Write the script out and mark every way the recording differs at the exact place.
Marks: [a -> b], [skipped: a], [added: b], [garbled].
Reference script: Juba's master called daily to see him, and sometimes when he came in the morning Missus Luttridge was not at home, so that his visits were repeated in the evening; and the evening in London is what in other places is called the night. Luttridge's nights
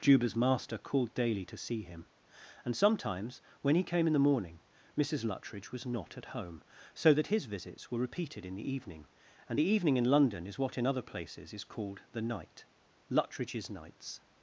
Juba's master called daily to see him, and sometimes when he came in the morning Missus Luttridge was not at home, so that his visits were repeated in the evening; and the evening in London is what in other places is called the night. Luttridge's nights